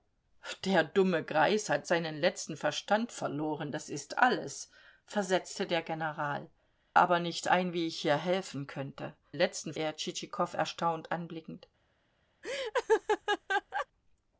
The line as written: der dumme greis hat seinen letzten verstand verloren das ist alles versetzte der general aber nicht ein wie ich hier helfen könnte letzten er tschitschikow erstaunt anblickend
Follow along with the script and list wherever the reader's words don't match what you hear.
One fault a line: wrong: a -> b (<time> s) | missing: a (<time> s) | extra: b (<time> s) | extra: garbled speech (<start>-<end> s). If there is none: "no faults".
no faults